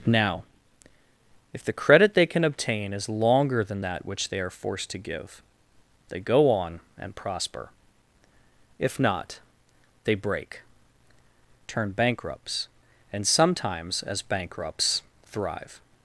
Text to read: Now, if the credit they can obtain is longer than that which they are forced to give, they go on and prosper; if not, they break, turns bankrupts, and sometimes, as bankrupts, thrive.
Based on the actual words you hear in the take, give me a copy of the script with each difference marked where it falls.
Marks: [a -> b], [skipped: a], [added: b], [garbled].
Now, if the credit they can obtain is longer than that which they are forced to give, they go on and prosper; if not, they break, [turns -> turn] bankrupts, and sometimes, as bankrupts, thrive.